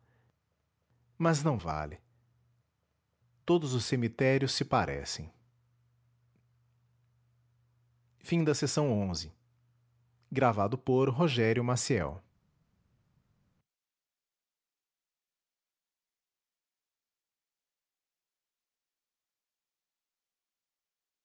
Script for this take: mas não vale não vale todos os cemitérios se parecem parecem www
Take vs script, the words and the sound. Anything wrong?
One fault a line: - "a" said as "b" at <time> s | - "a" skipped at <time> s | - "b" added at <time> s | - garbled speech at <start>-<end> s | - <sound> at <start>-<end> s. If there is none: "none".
- "não vale" skipped at 2.0 s
- "parecem" skipped at 5.3 s